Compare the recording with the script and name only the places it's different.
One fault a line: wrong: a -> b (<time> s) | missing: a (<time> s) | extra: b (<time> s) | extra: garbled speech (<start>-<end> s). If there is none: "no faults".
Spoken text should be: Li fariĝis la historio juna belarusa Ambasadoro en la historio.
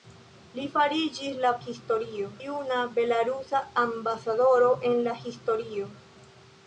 no faults